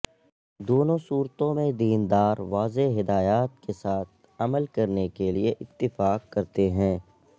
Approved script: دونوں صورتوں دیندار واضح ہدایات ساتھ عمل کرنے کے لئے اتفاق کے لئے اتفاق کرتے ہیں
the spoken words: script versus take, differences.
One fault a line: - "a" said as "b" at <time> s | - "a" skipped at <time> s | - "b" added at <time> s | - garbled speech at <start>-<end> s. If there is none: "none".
- "میں" added at 1.5 s
- "کے" added at 3.6 s
- "کے لئے اتفاق" skipped at 6.3 s